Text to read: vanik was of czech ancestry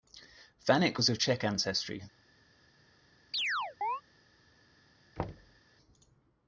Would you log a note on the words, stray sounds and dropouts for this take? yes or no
yes